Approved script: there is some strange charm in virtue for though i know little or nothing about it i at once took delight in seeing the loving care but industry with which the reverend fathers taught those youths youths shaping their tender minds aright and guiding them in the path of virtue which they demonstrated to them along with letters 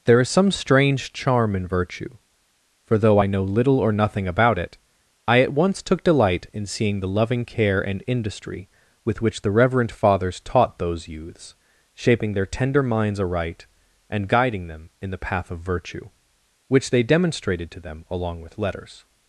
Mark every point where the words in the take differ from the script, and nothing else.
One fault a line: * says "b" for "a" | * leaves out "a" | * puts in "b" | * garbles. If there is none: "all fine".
* says "and" for "but"
* leaves out "youths"